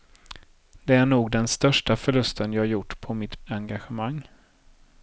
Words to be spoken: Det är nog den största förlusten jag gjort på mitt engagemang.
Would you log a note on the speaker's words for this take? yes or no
no